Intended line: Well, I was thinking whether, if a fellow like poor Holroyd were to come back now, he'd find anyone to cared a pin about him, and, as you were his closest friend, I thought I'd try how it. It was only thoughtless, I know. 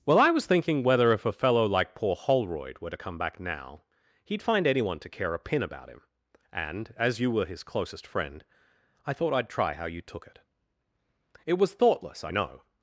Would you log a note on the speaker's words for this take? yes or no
yes